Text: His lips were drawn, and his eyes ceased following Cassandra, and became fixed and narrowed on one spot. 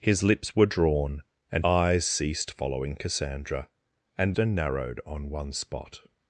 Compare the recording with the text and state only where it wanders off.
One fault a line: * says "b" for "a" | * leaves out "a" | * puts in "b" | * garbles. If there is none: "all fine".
* leaves out "his"
* leaves out "became fixed"